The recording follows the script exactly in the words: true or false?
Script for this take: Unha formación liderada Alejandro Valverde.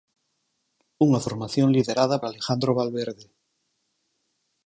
true